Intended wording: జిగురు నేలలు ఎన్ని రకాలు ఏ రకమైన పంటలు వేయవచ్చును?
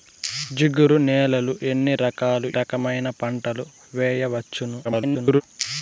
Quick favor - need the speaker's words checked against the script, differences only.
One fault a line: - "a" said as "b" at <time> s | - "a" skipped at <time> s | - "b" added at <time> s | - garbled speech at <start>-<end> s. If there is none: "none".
- "ఏ" skipped at 2.5 s
- garbled speech at 4.8-5.4 s